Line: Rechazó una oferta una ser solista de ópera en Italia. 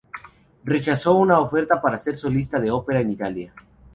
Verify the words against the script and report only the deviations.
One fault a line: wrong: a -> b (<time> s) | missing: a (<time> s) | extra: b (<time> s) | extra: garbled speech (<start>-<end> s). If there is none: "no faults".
wrong: una -> para (1.8 s)